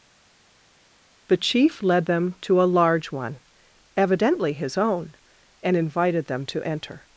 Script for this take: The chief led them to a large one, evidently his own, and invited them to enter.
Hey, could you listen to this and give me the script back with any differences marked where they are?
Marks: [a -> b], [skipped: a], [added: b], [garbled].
The chief led them to a large one, evidently his own, and invited them to enter.